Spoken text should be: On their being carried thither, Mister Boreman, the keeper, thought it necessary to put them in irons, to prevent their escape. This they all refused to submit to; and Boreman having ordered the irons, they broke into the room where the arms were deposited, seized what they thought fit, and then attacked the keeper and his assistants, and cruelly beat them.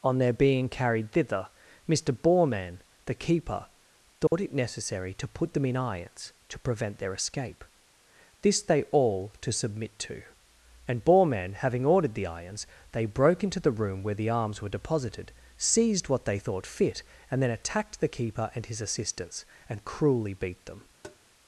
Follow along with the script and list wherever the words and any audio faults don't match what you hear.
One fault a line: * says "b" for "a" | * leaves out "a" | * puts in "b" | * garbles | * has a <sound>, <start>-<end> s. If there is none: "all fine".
* has a dropout, 4.3-4.3 s
* leaves out "refused"
* has a tap, 21.0-21.2 s